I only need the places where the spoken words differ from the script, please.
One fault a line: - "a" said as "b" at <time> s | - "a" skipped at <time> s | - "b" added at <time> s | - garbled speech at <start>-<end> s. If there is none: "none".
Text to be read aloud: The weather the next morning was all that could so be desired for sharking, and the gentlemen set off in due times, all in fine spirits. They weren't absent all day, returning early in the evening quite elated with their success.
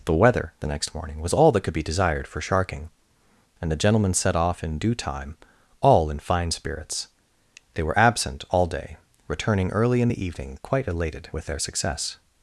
- "so" skipped at 1.8 s
- "times" said as "time" at 5.0 s
- "weren't" said as "were" at 7.8 s